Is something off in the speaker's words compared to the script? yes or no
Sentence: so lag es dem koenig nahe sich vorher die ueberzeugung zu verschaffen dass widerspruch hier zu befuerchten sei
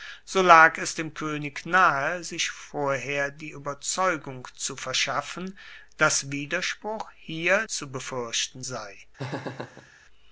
no